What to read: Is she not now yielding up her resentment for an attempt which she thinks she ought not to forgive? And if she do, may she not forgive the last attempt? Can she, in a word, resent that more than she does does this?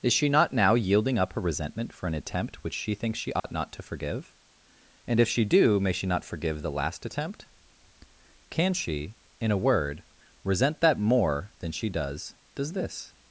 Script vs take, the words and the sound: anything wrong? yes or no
yes